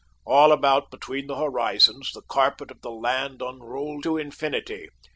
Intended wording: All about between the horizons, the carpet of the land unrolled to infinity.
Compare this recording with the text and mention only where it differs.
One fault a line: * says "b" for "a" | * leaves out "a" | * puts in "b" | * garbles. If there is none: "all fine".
all fine